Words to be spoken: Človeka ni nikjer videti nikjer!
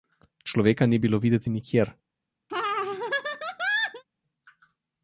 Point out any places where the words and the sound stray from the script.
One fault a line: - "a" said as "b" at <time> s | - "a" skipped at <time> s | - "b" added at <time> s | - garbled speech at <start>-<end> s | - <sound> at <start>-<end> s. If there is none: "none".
- "nikjer" said as "bilo" at 1.0 s
- laugh at 2.5-4.0 s